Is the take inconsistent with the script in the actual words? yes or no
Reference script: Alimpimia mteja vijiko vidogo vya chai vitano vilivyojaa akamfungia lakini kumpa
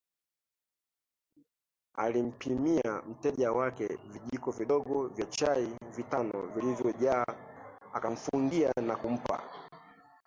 yes